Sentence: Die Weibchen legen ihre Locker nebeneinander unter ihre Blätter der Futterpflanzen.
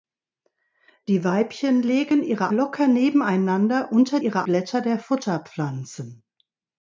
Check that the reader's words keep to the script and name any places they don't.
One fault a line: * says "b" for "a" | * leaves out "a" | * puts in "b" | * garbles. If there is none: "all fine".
all fine